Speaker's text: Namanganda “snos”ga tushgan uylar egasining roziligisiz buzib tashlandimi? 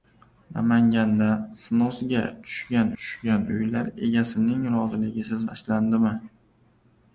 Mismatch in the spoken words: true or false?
true